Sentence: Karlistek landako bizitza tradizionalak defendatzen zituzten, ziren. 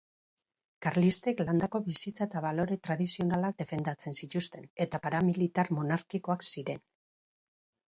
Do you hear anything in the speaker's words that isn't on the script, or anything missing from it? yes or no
yes